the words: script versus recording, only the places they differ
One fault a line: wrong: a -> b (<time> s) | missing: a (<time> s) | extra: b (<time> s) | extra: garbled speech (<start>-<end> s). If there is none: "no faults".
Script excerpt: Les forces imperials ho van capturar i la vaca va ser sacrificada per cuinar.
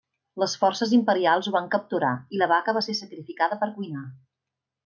no faults